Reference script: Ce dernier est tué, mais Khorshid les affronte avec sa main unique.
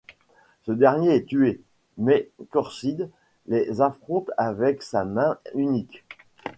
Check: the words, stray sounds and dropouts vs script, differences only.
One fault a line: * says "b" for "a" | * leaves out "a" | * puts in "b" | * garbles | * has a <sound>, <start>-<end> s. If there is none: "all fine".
all fine